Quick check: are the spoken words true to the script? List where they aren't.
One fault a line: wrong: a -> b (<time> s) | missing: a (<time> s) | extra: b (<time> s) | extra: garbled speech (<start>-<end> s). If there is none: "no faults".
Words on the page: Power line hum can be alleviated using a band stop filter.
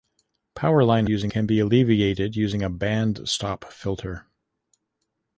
wrong: hum -> using (1.1 s)